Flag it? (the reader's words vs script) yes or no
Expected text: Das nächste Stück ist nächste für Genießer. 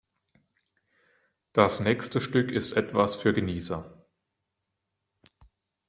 yes